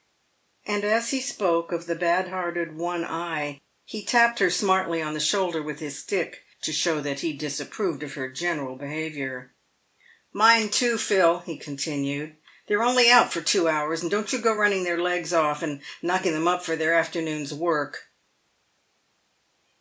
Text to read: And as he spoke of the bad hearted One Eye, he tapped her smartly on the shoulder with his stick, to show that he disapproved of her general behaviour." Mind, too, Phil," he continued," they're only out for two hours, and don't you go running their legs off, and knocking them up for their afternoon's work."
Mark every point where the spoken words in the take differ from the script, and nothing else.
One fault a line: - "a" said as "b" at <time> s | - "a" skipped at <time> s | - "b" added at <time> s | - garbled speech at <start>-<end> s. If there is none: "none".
none